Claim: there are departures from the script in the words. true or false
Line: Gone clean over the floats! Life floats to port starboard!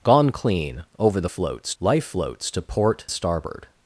false